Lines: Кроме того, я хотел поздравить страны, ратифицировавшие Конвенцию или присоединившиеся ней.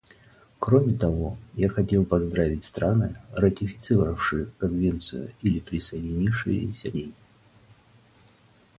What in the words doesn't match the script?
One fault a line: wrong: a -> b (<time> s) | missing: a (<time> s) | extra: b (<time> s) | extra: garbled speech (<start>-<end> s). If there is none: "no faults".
no faults